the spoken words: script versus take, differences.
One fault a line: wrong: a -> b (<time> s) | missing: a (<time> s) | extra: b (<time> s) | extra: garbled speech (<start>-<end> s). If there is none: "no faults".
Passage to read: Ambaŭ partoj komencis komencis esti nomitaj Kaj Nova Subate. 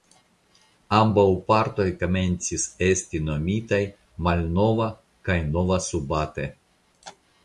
missing: komencis (2.7 s)
extra: Malnova (4.3 s)